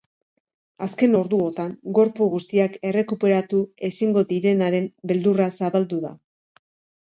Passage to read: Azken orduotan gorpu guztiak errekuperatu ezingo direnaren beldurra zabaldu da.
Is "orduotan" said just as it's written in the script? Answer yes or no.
yes